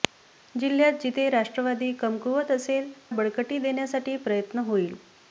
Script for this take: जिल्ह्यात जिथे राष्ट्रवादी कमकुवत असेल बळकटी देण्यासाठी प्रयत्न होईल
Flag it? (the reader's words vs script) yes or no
no